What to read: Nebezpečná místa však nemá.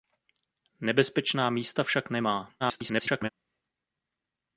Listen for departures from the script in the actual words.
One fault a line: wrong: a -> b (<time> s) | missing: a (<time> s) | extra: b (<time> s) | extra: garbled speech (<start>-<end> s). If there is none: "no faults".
extra: garbled speech (2.6-3.3 s)